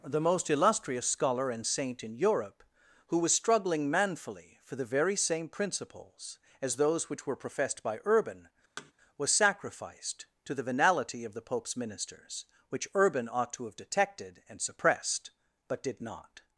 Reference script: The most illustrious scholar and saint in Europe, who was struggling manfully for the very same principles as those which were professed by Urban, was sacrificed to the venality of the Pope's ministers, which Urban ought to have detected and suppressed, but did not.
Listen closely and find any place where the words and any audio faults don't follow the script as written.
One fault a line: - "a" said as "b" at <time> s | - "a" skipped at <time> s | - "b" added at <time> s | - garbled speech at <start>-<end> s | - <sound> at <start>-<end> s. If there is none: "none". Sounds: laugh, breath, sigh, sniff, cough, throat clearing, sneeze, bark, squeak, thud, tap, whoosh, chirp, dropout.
- thud at 8.8-8.9 s